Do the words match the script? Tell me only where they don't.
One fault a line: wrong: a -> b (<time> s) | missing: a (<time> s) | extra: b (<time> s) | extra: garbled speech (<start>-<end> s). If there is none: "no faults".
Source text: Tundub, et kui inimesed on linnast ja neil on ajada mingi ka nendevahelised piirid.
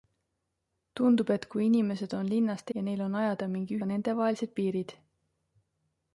no faults